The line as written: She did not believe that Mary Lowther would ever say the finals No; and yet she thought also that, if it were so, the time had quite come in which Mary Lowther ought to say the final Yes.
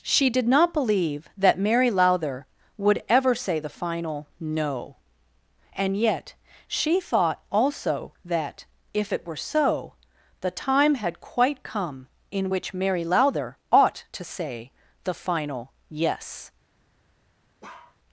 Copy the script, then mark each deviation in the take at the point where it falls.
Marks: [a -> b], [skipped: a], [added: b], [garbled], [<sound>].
She did not believe that Mary Lowther would ever say the [finals -> final] No; and yet she thought also that, if it were so, the time had quite come in which Mary Lowther ought to say the final Yes. [bark]